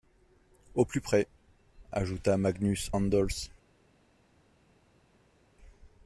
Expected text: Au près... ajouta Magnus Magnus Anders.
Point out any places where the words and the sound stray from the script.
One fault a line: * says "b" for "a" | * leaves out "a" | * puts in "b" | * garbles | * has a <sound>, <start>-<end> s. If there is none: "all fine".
* puts in "plus"
* leaves out "Magnus"